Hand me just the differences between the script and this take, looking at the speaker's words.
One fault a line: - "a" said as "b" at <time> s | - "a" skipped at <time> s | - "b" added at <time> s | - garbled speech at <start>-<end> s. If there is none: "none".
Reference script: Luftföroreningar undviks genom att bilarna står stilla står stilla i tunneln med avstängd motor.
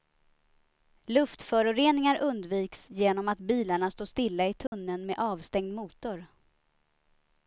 - "står stilla" skipped at 4.5 s